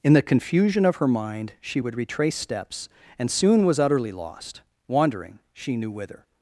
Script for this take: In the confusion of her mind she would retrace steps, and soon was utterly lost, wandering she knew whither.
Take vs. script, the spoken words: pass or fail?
pass